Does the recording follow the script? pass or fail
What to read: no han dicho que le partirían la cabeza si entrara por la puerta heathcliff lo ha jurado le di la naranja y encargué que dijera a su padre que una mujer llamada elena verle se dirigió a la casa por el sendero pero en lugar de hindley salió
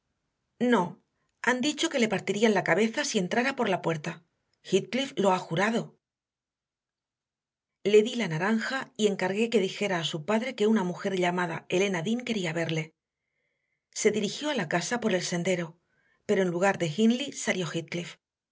fail